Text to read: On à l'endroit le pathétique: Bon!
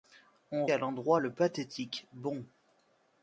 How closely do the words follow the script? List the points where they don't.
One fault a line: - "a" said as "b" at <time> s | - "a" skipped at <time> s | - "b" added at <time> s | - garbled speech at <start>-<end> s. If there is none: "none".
none